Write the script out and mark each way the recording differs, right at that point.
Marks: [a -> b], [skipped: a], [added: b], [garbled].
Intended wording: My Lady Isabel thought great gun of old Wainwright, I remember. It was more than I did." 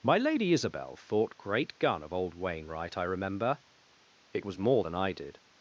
My Lady Isabel thought great gun of old Wainwright, I remember. It was more than I did."